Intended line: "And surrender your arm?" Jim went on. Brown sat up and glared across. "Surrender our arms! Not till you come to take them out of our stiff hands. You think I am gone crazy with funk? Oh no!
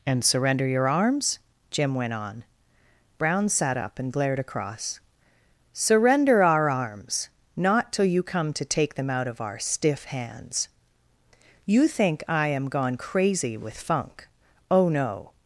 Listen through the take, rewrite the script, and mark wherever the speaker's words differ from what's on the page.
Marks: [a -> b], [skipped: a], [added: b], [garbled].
"And surrender your [arm?" -> arms] Jim went on. Brown sat up and glared across. "Surrender our arms! Not till you come to take them out of our stiff hands. You think I am gone crazy with funk? Oh no!